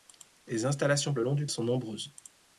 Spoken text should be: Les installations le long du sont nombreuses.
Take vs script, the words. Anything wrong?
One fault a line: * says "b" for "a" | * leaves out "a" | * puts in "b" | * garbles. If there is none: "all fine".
all fine